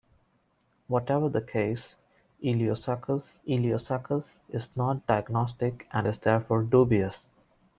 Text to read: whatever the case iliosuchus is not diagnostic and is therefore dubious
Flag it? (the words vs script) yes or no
yes